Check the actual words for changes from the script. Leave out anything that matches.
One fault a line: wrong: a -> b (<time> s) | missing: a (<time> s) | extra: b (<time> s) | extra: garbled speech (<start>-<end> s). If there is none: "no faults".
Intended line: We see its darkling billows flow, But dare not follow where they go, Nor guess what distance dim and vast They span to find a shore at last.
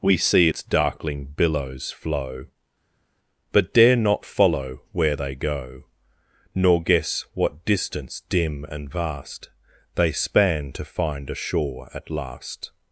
no faults